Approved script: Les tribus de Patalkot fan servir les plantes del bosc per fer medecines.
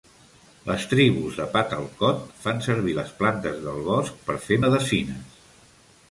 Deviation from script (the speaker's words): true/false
false